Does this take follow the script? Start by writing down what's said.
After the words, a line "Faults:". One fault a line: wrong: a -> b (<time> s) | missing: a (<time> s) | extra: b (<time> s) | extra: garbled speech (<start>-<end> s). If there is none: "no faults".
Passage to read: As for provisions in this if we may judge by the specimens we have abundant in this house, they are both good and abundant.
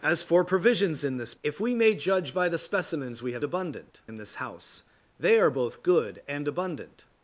As for provisions in this if we may judge by the specimens we have abundant in this house, they are both good and abundant.
Faults:
no faults